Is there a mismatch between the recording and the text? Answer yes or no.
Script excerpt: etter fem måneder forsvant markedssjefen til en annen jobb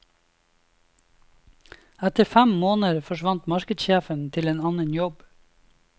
no